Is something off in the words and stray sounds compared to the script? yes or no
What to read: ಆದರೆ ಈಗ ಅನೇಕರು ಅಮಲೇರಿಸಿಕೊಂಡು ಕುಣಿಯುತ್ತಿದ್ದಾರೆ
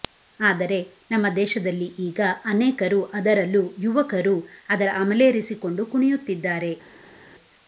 yes